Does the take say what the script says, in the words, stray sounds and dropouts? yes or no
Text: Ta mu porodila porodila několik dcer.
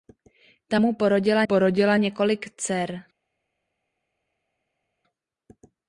yes